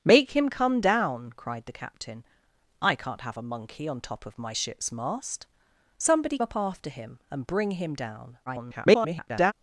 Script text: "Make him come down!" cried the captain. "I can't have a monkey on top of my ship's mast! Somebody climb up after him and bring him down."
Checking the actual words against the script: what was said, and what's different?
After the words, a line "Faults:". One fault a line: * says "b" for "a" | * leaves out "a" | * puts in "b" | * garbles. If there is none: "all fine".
"Make him come down!" cried the captain. "I can't have a monkey on top of my ship's mast! Somebody up after him and bring him down." [garbled]
Faults:
* leaves out "climb"
* garbles